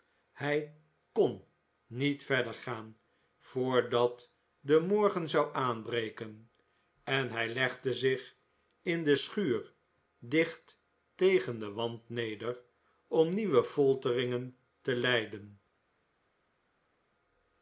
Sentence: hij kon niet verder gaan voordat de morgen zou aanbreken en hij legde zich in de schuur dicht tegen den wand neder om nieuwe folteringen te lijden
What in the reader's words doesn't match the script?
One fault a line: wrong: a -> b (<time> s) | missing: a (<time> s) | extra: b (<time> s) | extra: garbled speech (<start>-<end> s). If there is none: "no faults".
no faults